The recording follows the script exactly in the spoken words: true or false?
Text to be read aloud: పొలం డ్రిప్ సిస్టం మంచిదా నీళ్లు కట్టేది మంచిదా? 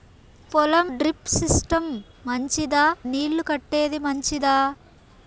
true